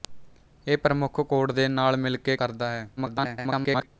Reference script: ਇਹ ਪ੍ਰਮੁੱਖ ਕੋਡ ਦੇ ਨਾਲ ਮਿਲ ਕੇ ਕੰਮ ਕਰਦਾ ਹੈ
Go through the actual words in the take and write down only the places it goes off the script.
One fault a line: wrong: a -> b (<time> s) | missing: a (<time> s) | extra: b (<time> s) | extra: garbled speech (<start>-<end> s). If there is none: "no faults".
missing: ਕੰਮ (2.4 s)
extra: garbled speech (3.0-3.9 s)